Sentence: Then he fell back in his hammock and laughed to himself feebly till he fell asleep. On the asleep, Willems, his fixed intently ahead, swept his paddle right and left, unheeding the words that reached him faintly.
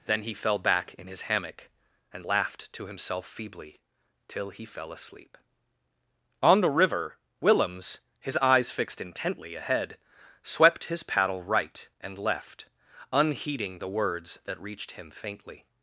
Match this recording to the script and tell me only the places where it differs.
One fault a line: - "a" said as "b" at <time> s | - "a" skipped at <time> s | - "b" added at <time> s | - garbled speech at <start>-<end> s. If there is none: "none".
- "asleep" said as "river" at 6.7 s
- "eyes" added at 8.4 s